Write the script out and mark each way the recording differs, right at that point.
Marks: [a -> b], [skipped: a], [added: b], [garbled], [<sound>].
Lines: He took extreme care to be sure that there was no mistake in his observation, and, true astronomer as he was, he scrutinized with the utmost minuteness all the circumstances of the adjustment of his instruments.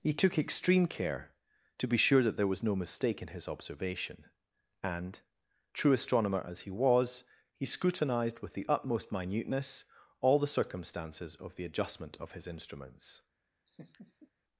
He took extreme care to be sure that there was no mistake in his observation, and, true astronomer as he was, he scrutinized with the utmost minuteness all the circumstances of the adjustment of his instruments. [laugh]